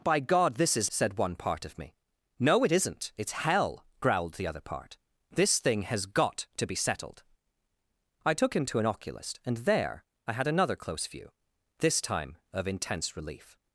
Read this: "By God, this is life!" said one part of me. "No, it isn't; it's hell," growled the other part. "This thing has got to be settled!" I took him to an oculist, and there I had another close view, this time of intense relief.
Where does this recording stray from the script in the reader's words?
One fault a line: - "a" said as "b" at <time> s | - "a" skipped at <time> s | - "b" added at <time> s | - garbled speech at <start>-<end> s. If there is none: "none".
- "life" skipped at 0.9 s